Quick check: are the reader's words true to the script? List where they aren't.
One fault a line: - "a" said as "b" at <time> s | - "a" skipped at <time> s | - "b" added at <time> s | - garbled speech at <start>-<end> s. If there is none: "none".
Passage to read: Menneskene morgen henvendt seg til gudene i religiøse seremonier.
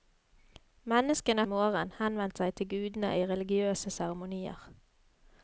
none